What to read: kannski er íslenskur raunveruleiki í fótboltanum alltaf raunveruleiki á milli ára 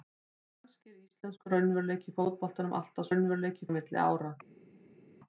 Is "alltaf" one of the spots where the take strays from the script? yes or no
no